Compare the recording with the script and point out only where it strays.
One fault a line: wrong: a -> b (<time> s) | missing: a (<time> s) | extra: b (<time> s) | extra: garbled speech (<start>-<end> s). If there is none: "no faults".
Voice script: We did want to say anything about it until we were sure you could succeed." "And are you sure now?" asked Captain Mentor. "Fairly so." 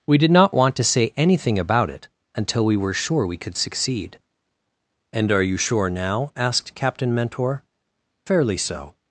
extra: not (0.3 s)
wrong: you -> we (3.3 s)